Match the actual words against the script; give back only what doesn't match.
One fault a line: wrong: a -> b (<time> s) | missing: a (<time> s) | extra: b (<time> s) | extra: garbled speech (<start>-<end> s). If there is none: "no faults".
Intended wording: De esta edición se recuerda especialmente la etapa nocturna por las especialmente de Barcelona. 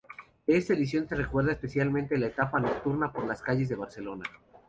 wrong: especialmente -> calles (3.4 s)